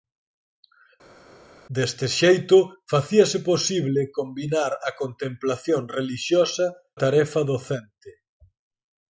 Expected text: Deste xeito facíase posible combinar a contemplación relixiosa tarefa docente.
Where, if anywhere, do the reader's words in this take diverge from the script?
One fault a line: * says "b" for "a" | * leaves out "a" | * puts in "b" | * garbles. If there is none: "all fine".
all fine